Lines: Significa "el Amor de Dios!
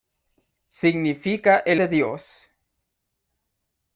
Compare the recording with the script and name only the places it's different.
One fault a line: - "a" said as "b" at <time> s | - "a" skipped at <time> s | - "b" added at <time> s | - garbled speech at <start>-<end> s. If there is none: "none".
- "Amor" skipped at 1.8 s